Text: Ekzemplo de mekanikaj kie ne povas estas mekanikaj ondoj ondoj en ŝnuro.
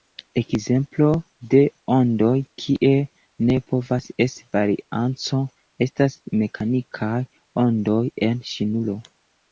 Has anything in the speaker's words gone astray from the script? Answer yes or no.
yes